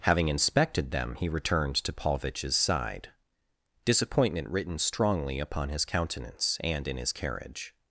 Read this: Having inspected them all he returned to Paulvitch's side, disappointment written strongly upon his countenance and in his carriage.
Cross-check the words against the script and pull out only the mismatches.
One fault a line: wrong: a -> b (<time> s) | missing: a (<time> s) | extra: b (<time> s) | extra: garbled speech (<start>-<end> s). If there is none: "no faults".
missing: all (1.1 s)